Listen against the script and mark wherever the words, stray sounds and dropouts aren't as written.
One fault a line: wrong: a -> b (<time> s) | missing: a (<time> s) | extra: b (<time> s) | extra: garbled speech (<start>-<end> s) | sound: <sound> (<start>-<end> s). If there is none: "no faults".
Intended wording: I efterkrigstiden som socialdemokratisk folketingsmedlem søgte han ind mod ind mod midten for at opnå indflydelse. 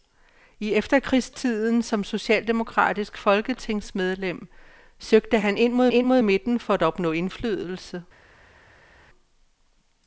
no faults